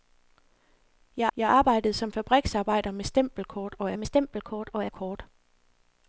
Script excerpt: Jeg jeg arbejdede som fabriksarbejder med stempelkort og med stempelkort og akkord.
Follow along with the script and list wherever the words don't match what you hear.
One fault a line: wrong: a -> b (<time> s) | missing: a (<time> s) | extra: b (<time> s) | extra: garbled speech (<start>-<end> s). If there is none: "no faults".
no faults